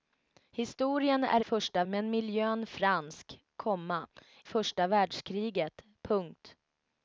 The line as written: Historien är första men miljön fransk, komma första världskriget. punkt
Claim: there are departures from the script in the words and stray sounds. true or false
false